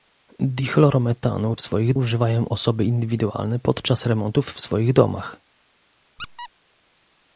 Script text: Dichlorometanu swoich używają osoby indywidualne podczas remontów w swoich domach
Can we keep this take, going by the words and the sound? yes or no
no